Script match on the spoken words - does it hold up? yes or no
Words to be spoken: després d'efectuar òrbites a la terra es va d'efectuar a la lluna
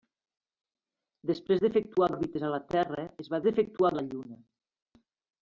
yes